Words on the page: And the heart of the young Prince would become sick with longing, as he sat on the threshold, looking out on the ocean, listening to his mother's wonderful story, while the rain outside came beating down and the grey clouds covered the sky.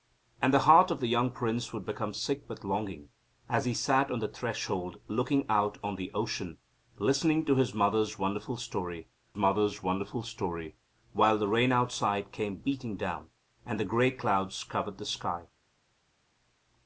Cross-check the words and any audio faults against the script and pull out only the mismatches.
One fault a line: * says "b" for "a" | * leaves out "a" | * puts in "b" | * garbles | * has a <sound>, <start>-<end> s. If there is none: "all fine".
* puts in "mother's wonderful story"